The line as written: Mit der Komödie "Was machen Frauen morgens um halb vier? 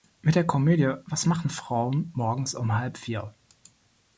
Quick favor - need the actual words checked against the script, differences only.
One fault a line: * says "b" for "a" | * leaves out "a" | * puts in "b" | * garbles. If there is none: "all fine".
all fine